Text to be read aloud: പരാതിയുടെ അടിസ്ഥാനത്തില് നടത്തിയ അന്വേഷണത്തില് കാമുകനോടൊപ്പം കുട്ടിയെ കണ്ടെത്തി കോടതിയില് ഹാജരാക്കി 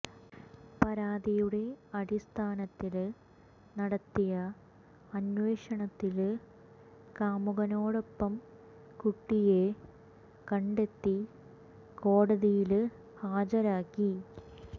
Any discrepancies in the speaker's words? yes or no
no